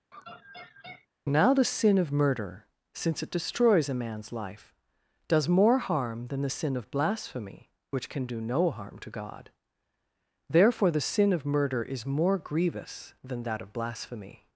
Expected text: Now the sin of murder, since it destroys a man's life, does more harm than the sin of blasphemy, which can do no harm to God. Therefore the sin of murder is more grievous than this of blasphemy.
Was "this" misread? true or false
true